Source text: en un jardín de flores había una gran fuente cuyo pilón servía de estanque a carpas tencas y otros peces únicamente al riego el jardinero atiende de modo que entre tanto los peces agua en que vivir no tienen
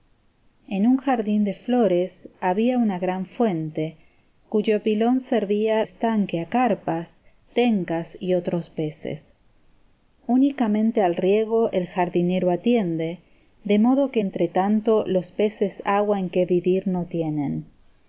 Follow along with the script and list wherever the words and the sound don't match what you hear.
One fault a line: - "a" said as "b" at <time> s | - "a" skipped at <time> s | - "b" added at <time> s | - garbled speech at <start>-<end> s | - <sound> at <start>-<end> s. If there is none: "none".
- "de" skipped at 5.8 s